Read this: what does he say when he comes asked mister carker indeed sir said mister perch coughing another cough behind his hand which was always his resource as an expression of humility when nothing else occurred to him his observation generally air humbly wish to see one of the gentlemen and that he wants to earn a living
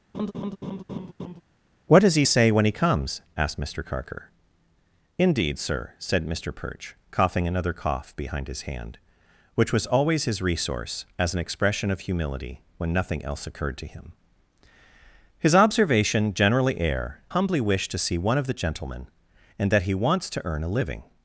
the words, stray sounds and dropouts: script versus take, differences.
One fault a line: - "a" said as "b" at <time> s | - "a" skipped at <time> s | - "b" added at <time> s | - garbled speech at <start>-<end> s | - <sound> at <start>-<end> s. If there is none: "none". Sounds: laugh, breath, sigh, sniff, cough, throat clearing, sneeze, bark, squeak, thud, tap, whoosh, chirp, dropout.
- laugh at 0.1-1.4 s